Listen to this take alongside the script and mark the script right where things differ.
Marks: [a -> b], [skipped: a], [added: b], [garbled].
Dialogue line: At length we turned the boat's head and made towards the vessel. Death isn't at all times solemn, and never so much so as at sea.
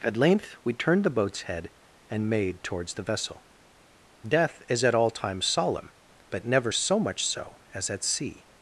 At length we turned the boat's head and made towards the vessel. Death [isn't -> is] at all times solemn, [and -> but] never so much so as at sea.